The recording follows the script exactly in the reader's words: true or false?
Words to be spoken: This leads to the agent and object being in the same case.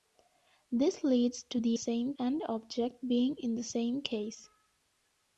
false